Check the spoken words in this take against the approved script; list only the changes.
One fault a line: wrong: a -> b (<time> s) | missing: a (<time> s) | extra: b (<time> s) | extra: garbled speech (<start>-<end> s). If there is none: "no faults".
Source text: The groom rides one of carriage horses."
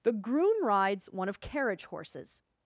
no faults